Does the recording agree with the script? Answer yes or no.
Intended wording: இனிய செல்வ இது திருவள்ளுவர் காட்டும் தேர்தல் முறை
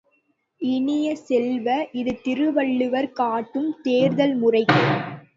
yes